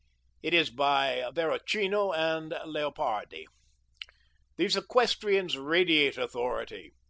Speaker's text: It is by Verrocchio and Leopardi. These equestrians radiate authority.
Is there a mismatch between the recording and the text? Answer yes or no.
no